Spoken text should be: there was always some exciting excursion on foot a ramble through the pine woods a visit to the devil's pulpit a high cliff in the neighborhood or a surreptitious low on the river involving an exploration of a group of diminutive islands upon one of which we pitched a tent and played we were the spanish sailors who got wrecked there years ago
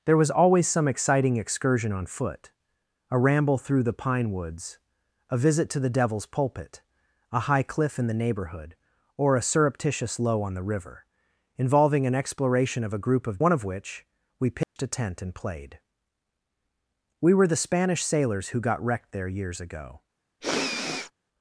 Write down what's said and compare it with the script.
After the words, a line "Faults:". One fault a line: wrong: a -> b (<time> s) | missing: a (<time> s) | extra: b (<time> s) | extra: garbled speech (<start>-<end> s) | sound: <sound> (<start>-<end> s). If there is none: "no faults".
there was always some exciting excursion on foot a ramble through the pine woods a visit to the devil's pulpit a high cliff in the neighborhood or a surreptitious low on the river involving an exploration of a group of one of which we pitched a tent and played we were the spanish sailors who got wrecked there years ago
Faults:
missing: diminutive islands upon (13.4 s)
sound: dropout (14.6-14.8 s)
sound: sniff (20.4-21.1 s)